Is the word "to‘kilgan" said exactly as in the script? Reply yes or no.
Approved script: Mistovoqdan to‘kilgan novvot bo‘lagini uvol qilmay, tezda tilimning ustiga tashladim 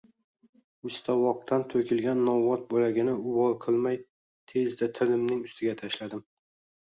yes